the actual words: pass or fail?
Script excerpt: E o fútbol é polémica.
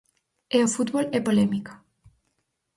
pass